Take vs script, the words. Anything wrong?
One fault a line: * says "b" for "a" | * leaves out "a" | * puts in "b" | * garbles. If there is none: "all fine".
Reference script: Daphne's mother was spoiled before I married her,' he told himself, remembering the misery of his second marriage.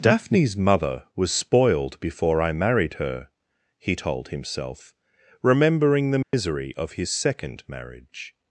all fine